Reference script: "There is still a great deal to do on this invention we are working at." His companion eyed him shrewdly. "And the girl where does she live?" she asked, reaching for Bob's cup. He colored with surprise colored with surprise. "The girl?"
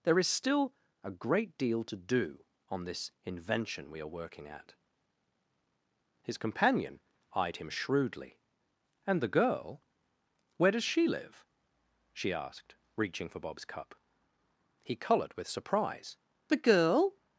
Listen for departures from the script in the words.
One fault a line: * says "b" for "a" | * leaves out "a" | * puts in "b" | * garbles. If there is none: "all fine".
* leaves out "colored with surprise"